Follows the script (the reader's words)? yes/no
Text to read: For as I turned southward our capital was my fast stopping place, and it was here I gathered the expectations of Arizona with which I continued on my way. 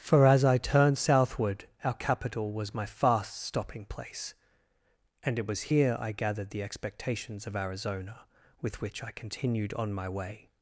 yes